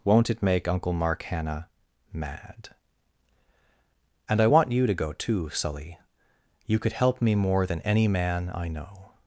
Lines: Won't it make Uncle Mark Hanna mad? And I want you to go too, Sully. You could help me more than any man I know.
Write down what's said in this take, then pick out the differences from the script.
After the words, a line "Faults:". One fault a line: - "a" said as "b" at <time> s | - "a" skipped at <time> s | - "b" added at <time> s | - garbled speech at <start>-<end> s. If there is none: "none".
Won't it make Uncle Mark Hanna mad? And I want you to go too, Sully. You could help me more than any man I know.
Faults:
none